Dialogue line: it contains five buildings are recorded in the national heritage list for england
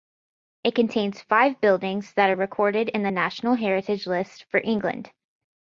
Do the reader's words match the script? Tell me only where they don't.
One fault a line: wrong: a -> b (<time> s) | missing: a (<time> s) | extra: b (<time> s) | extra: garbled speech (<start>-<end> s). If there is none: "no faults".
extra: that (2.1 s)